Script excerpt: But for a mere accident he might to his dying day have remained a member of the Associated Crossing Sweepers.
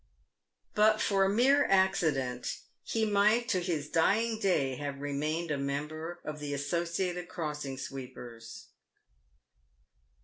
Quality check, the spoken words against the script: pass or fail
pass